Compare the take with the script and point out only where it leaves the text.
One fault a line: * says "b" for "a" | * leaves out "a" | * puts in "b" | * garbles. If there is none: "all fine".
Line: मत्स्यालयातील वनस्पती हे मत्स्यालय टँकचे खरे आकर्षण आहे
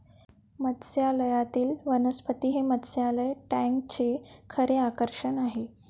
all fine